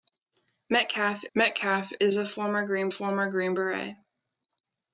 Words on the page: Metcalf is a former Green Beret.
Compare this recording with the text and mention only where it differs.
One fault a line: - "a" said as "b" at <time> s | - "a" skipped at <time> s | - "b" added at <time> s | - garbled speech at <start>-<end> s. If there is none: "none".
- "metcalf" added at 1.3 s
- "former Green" added at 2.9 s